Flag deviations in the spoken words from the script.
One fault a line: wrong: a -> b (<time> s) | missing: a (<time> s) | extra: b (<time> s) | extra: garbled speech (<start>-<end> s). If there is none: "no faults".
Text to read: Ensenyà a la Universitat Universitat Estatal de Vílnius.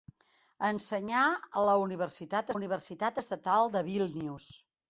no faults